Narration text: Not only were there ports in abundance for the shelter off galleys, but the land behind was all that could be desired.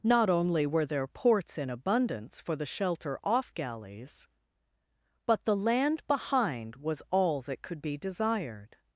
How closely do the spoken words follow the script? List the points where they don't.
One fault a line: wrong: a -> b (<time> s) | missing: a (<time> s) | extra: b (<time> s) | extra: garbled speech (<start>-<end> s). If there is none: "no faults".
no faults